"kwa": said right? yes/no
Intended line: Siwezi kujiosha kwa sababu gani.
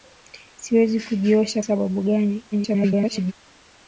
no